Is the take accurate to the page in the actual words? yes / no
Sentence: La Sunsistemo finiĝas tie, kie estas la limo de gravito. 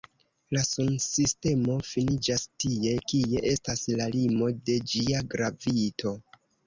no